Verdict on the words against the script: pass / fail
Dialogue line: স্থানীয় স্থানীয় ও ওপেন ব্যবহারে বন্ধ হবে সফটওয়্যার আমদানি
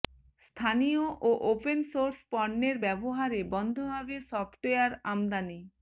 fail